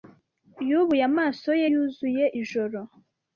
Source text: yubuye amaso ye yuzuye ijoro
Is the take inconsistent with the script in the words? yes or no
no